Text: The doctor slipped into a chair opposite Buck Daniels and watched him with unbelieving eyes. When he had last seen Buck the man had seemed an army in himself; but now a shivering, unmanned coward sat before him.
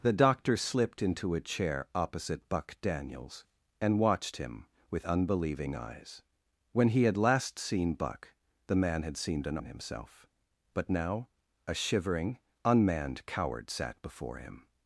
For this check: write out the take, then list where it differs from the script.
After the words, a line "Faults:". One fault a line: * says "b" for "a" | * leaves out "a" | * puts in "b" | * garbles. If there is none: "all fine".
The doctor slipped into a chair opposite Buck Daniels and watched him with unbelieving eyes. When he had last seen Buck the man had seemed an in himself; but now a shivering, unmanned coward sat before him.
Faults:
* leaves out "army"